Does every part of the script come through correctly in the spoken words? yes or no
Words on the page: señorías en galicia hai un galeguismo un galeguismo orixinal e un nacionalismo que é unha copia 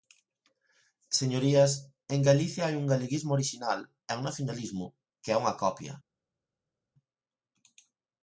no